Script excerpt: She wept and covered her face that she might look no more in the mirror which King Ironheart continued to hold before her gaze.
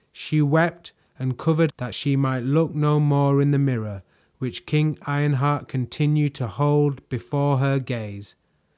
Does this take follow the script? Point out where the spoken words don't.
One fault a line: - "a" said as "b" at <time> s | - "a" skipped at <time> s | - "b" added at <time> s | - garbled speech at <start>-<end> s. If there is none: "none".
- "her face" skipped at 1.7 s